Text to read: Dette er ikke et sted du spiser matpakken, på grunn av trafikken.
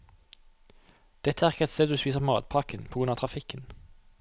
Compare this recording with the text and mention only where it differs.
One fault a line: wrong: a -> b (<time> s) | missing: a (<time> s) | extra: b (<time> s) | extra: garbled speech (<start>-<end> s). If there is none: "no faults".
no faults